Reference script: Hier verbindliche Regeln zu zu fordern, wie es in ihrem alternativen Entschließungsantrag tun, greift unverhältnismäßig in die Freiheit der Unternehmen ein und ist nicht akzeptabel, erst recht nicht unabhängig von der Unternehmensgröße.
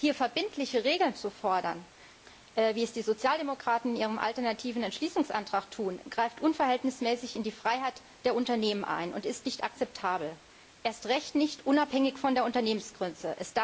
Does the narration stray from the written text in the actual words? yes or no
yes